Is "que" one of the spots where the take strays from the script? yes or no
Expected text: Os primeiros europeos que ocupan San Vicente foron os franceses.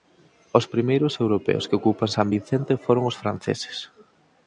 no